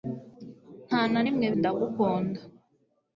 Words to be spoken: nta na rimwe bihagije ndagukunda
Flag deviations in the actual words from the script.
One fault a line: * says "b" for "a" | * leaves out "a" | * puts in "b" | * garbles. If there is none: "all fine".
* leaves out "bihagije"